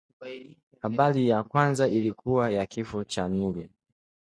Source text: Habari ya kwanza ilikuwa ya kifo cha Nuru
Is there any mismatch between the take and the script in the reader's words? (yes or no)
no